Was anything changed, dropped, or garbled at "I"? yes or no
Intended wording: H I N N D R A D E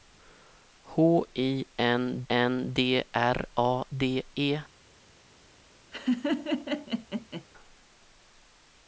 no